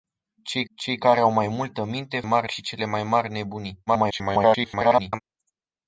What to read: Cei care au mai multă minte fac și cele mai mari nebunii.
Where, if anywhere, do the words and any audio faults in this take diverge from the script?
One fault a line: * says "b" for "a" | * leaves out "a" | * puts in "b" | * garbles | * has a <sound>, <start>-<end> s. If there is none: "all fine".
* puts in "cei"
* says "mari" for "fac"
* garbles